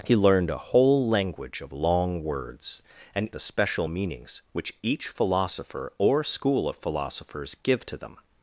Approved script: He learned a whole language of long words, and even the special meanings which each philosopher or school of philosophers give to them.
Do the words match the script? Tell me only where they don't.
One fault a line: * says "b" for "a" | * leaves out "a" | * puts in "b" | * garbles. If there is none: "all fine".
* leaves out "even"